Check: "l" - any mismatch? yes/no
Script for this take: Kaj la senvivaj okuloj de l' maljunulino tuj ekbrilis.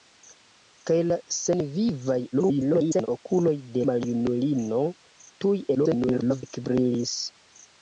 yes